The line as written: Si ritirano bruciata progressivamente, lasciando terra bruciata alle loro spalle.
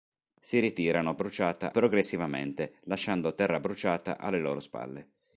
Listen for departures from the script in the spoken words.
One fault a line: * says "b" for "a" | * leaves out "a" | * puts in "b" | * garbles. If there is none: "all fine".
all fine